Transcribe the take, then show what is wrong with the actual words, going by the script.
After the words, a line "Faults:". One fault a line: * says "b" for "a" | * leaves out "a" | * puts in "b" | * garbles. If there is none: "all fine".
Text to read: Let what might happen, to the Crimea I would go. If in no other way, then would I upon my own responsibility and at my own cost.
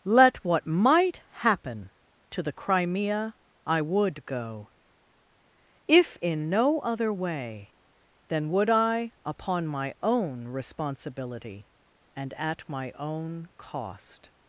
Let what might happen, to the Crimea I would go. If in no other way, then would I upon my own responsibility and at my own cost.
Faults:
all fine